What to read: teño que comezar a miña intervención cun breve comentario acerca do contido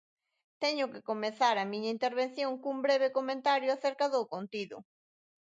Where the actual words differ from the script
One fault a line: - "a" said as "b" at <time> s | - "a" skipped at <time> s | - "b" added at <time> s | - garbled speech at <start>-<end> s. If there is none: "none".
none